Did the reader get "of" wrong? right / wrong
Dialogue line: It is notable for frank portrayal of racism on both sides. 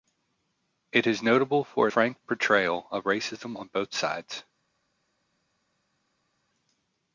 right